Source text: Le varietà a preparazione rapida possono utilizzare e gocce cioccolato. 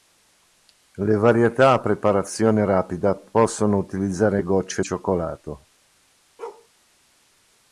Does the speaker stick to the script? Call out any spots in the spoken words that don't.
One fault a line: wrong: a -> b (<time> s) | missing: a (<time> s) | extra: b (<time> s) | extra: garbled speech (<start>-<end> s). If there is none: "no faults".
no faults